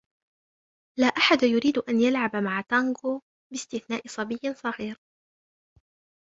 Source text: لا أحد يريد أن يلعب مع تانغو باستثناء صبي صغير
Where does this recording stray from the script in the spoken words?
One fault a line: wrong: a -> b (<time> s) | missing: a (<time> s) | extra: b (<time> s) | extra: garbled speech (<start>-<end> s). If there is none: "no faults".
no faults